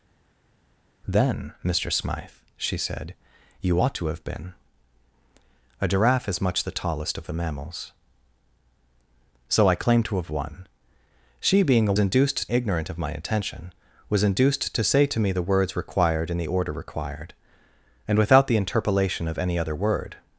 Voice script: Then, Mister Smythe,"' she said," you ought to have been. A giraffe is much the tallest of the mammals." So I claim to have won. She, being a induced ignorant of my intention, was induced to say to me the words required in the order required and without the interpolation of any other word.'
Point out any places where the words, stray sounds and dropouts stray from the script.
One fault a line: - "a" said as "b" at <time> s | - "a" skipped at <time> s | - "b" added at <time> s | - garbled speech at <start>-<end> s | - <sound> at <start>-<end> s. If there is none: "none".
none